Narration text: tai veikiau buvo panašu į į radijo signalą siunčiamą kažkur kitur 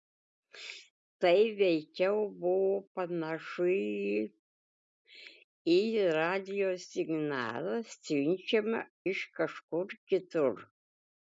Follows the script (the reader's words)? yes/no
no